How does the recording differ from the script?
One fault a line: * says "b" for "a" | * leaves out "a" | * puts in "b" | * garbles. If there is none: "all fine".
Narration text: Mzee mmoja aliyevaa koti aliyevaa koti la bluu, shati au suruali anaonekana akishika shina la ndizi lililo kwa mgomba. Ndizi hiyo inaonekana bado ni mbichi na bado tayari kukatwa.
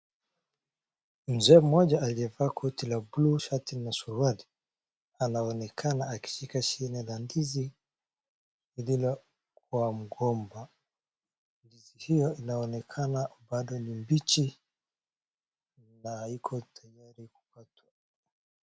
* leaves out "aliyevaa koti"
* says "na" for "au"
* says "haiko" for "bado"